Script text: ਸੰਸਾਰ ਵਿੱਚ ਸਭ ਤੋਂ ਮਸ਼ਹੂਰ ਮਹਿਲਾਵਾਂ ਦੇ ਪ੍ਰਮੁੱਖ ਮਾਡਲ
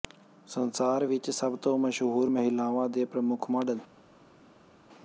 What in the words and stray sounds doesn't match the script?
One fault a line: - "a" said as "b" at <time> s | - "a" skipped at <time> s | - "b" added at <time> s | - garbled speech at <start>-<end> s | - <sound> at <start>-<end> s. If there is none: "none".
none